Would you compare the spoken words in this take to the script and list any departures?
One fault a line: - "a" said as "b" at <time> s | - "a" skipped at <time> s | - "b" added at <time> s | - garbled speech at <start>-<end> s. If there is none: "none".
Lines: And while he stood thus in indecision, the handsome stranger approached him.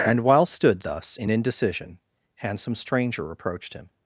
- "he" skipped at 0.5 s
- "the" skipped at 2.0 s